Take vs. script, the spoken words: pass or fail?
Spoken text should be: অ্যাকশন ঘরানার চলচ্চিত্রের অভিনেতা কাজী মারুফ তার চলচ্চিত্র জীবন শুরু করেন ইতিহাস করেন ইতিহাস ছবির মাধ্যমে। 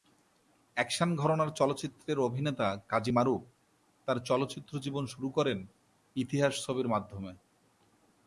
fail